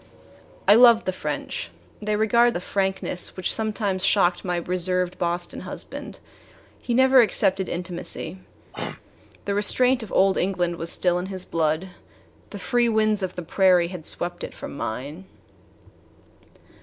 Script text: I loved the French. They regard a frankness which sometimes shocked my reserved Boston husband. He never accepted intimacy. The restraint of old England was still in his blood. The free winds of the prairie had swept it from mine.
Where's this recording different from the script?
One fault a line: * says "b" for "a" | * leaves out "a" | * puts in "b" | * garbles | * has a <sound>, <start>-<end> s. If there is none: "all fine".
* has a throat clearing, 8.7-9.0 s